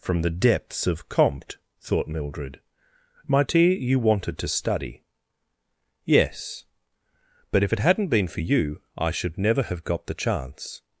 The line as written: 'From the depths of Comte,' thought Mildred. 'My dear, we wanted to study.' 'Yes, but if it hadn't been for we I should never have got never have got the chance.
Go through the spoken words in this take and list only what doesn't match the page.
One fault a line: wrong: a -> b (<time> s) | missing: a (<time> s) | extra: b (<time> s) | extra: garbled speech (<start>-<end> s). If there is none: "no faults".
wrong: we -> you (3.7 s)
wrong: we -> you (8.4 s)
missing: never have got (10.1 s)